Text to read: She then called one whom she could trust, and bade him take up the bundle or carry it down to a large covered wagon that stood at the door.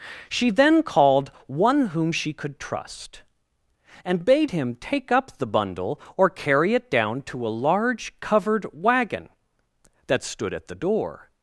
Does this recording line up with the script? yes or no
yes